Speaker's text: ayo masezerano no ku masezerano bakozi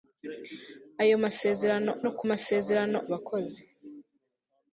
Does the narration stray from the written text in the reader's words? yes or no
no